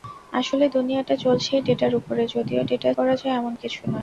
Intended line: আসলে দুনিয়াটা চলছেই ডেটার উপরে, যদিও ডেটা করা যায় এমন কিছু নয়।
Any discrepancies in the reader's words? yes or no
no